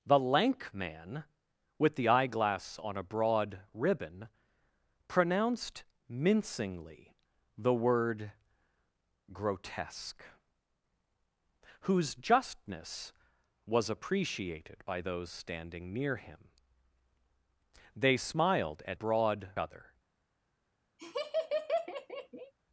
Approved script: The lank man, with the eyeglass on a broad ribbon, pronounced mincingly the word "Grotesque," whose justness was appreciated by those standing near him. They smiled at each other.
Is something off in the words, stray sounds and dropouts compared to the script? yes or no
yes